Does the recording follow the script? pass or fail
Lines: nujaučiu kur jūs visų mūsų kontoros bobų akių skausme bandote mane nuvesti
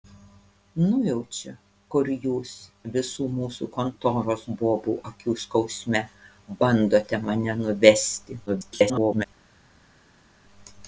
fail